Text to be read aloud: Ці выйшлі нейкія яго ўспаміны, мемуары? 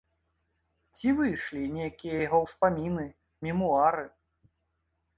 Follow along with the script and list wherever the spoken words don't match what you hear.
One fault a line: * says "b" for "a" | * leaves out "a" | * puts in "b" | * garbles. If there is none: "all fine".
all fine